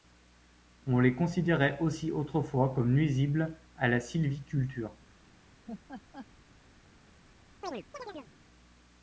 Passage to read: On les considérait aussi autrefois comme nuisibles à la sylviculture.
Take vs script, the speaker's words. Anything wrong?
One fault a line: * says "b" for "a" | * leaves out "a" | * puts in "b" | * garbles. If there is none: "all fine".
all fine